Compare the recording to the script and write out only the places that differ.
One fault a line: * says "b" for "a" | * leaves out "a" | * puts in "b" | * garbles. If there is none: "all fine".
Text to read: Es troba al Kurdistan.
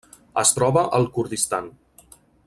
all fine